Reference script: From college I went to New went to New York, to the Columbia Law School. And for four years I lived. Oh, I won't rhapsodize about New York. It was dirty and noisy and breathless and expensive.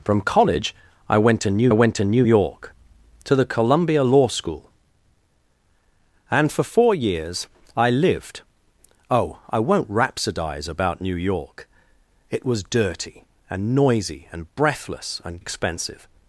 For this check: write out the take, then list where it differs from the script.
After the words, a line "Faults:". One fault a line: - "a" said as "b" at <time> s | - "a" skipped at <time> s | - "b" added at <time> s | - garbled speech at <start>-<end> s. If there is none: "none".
From college I went to New went to New York, to the Columbia Law School. And for four years I lived. Oh, I won't rhapsodize about New York. It was dirty and noisy and breathless and expensive.
Faults:
none